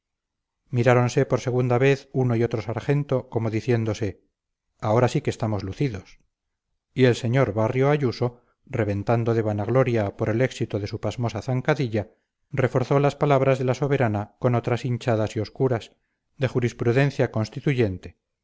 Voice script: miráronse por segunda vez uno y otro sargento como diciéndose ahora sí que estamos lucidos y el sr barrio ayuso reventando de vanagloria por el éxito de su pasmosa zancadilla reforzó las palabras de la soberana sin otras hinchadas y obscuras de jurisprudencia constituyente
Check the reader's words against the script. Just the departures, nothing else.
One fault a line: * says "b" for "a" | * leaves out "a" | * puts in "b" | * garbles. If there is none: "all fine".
* says "con" for "sin"